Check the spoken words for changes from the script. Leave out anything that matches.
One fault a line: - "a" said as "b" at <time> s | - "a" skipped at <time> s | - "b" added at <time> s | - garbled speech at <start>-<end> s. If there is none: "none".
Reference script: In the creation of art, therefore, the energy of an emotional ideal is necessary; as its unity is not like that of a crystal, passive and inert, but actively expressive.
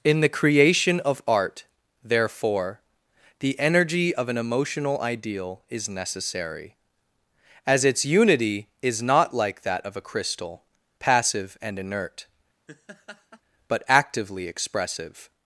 none